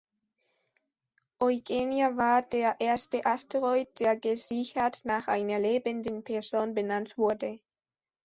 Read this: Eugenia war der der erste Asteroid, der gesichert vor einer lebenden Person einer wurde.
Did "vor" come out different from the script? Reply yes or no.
yes